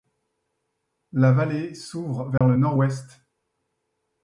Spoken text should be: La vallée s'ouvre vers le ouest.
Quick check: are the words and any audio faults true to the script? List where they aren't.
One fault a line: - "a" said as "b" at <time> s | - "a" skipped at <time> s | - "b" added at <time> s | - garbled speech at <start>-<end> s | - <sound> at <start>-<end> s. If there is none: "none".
- dropout at 2.4-2.4 s
- "nord" added at 2.6 s